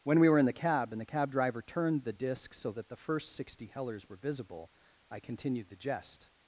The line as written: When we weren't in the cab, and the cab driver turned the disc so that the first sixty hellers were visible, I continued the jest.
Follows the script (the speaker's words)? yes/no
no